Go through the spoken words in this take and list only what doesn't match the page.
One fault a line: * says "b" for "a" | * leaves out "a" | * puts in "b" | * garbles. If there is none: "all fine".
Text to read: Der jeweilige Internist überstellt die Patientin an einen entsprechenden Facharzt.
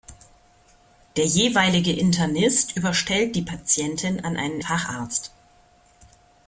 * leaves out "entsprechenden"